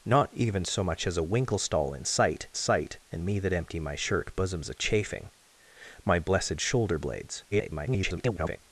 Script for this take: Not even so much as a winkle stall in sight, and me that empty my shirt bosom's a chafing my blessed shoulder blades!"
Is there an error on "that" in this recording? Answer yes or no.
no